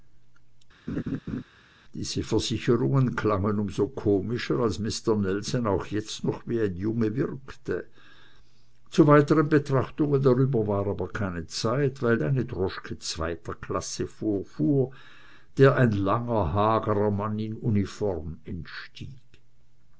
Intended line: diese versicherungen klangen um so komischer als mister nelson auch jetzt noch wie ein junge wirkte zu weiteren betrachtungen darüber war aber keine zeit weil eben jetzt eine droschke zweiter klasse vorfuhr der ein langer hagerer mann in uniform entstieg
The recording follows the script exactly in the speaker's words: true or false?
false